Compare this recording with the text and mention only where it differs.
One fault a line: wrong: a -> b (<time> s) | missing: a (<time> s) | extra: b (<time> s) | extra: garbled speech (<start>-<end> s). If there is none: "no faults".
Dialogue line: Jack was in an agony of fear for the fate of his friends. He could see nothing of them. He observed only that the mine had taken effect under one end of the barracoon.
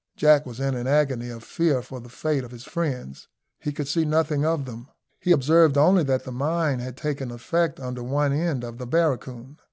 no faults